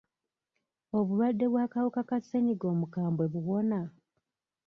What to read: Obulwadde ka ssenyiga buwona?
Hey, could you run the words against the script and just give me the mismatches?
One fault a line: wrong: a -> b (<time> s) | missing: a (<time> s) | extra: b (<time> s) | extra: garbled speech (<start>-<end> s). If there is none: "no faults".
extra: bw'akawuka (1.5 s)
extra: omukambwe (2.7 s)